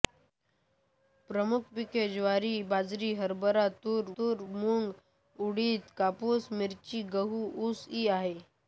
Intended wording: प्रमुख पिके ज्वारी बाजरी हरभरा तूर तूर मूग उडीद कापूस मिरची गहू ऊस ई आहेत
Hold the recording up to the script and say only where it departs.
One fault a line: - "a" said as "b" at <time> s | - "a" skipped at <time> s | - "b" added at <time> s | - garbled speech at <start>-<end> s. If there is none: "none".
none